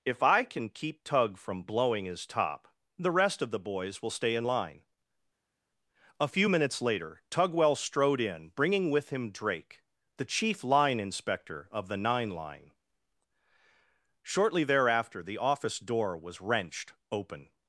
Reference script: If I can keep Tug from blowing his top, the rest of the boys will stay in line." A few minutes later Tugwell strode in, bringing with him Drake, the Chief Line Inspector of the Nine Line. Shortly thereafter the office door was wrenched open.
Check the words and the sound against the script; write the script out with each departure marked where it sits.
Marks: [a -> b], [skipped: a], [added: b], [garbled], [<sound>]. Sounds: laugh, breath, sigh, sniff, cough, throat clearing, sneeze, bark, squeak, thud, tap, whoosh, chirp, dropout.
If I can keep Tug from blowing his top, the rest of the boys will stay in line." A few minutes later Tugwell strode in, bringing with him Drake, the Chief Line Inspector of the Nine Line. Shortly thereafter the office door was wrenched open.